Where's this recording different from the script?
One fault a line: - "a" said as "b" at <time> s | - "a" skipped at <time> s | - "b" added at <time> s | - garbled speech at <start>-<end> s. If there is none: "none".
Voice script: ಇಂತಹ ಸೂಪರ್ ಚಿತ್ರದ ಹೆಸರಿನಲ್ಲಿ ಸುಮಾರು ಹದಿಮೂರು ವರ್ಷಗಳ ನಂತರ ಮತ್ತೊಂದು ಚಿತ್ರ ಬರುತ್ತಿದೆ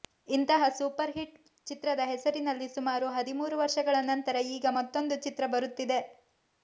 - "ಹಿಟ್" added at 1.1 s
- "ಈಗ" added at 4.5 s